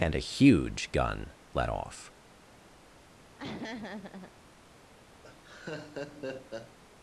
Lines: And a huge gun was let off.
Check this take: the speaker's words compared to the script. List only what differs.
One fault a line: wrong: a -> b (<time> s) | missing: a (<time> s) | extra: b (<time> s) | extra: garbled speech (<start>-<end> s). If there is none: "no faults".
missing: was (1.3 s)